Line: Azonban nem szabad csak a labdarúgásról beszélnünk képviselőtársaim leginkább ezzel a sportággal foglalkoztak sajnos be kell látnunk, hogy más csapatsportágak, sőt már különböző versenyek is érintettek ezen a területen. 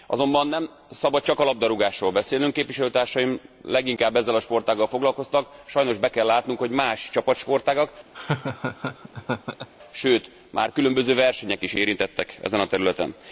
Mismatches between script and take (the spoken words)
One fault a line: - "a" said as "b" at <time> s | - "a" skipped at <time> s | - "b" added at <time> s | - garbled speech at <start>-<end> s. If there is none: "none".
none